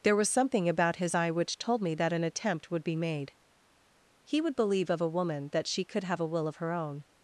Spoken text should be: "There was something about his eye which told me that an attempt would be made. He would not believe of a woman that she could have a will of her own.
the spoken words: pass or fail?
fail